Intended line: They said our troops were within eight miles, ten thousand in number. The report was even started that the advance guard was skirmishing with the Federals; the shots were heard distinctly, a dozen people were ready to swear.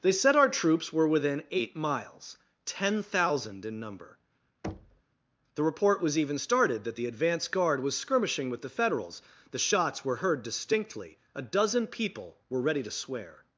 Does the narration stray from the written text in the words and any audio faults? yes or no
yes